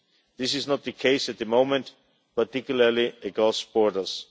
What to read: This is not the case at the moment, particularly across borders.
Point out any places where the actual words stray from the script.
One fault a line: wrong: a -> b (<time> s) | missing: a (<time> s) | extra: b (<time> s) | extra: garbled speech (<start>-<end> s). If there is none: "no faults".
no faults